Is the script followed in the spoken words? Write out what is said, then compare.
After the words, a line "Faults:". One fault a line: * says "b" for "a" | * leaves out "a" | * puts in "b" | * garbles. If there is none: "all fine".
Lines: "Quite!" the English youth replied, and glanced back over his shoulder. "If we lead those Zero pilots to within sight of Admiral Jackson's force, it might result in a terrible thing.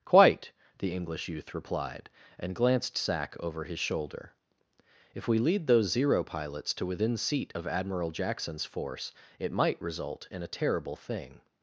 "Quite!" the English youth replied, and glanced sack over his shoulder. "If we lead those Zero pilots to within seat of Admiral Jackson's force, it might result in a terrible thing.
Faults:
* says "sack" for "back"
* says "seat" for "sight"